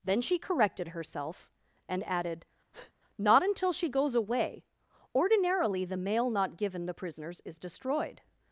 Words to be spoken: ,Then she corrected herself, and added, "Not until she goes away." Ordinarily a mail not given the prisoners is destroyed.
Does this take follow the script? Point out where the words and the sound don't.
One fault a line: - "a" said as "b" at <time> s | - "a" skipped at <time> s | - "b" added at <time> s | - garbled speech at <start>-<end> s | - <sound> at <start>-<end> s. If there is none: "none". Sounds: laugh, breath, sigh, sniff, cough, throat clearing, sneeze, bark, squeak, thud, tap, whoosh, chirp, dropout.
- breath at 2.7-2.9 s
- "a" said as "the" at 5.8 s